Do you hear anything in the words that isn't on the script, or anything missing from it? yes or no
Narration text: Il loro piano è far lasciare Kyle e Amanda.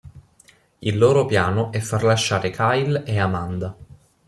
no